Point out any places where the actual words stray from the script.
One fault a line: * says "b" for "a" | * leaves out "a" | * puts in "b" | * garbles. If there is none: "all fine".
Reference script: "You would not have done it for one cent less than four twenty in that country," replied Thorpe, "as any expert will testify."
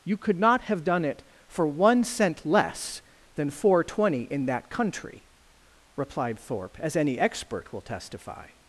* says "could" for "would"